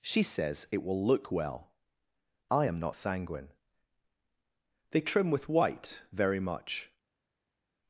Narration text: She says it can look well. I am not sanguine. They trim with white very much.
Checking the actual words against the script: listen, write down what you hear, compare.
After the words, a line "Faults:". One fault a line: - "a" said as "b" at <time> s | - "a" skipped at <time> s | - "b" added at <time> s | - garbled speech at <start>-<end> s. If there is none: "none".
She says it will look well. I am not sanguine. They trim with white very much.
Faults:
- "can" said as "will" at 0.8 s